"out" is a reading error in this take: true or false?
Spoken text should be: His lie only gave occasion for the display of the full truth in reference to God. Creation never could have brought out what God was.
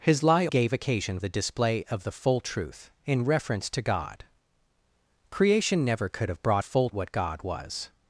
true